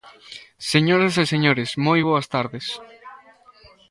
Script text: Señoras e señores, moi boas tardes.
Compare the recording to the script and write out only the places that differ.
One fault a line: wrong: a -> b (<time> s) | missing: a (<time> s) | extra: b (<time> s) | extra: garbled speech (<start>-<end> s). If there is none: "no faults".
no faults